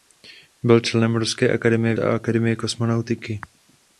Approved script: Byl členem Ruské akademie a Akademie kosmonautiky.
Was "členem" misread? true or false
false